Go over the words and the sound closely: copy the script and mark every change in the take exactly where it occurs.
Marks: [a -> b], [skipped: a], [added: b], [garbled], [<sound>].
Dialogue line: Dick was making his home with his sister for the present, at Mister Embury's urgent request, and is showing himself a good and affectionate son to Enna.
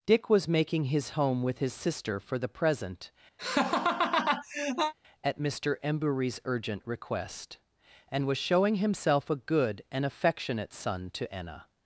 Dick was making his home with his sister for the present, [laugh] at Mister Embury's urgent request, and [is -> was] showing himself a good and affectionate son to Enna.